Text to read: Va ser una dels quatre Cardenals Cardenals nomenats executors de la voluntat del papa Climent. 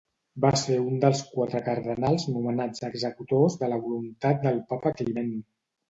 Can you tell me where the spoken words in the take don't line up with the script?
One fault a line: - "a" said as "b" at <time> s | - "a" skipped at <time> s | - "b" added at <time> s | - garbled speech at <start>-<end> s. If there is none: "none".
- "una" said as "un" at 0.8 s
- "Cardenals" skipped at 2.2 s